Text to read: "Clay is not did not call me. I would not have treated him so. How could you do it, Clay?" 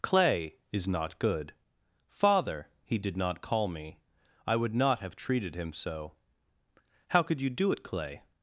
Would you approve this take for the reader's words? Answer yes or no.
no